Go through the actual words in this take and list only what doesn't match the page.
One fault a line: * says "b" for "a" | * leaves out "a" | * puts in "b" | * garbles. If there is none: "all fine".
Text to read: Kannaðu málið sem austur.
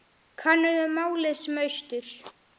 all fine